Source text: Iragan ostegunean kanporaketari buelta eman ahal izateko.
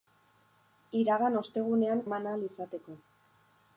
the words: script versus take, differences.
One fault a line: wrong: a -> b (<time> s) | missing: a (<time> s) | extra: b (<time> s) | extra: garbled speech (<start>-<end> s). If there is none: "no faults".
missing: kanporaketari buelta (2.0 s)